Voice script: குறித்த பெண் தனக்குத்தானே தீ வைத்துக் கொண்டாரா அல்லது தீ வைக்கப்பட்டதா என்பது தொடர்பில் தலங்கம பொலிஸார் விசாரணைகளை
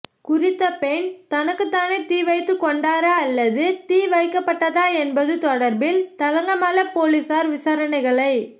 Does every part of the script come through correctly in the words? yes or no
yes